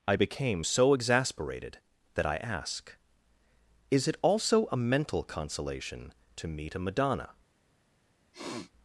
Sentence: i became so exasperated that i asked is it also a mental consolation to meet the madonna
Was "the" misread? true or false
true